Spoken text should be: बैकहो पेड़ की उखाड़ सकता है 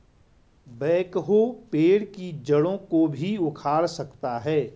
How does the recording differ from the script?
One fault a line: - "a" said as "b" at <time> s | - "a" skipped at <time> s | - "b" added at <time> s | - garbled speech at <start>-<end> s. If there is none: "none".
- "जड़ों को भी" added at 2.4 s